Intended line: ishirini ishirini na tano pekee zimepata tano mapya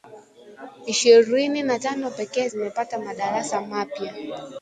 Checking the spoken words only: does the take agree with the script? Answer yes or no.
no